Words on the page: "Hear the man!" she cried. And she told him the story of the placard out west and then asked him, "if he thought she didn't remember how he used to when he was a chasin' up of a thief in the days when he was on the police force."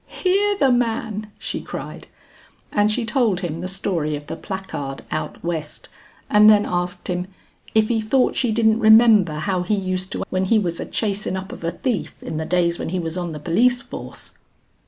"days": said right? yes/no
yes